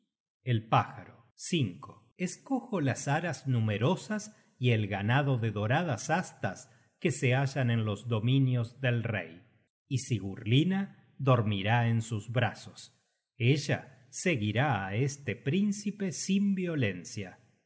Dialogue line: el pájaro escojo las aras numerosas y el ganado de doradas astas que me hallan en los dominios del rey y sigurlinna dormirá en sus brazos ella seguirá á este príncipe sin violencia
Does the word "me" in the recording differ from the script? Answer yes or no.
yes